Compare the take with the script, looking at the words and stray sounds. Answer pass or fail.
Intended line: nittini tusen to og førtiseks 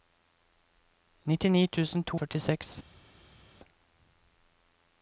pass